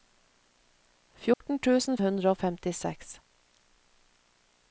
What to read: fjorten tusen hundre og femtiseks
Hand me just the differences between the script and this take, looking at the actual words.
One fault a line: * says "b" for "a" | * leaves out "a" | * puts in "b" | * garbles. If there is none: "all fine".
all fine